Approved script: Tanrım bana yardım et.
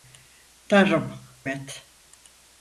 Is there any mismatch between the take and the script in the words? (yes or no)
yes